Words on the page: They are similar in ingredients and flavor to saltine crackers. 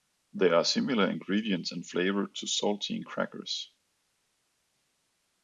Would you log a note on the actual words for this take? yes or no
no